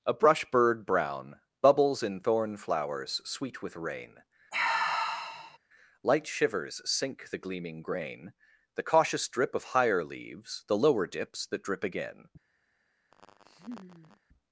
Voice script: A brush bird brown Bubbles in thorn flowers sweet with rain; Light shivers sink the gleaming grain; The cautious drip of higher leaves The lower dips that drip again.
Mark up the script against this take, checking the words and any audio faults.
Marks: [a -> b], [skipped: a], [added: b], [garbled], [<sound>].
A brush bird brown Bubbles in thorn flowers sweet with rain; [sigh] Light shivers sink the gleaming grain; The cautious drip of higher leaves The lower dips that drip again. [laugh]